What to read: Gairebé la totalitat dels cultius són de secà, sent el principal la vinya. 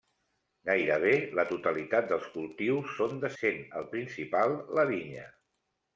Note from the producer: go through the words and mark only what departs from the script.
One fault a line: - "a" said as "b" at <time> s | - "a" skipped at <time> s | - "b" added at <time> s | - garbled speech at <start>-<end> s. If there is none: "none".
- "secà" skipped at 3.3 s